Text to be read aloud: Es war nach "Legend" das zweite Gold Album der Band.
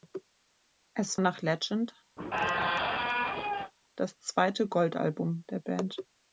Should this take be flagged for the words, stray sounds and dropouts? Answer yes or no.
yes